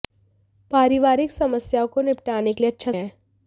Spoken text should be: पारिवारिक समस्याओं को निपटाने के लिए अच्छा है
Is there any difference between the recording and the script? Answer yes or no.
no